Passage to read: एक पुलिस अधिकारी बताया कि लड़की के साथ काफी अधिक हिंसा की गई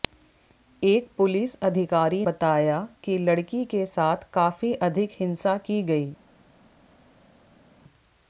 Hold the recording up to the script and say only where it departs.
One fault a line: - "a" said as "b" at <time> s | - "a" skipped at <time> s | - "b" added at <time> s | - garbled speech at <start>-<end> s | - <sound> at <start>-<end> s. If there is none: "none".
none